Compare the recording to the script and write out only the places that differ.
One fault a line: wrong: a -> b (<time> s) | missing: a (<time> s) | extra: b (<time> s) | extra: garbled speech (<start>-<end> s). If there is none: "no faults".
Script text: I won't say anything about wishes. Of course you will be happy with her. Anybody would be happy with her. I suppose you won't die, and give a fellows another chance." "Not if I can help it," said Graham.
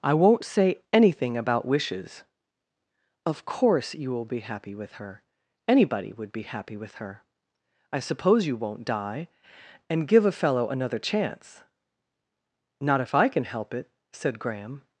wrong: fellows -> fellow (10.3 s)